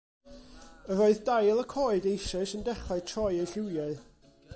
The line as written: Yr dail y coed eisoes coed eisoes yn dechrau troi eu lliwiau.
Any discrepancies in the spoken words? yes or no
yes